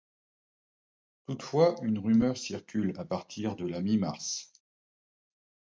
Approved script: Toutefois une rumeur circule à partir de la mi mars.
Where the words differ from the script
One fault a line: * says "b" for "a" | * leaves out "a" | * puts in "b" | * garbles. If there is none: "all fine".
all fine